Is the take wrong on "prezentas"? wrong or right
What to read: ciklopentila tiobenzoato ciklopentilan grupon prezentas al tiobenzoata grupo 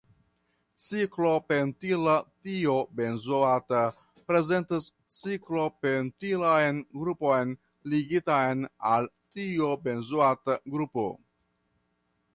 wrong